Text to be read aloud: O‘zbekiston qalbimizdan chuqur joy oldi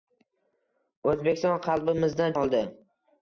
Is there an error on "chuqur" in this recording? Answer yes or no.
yes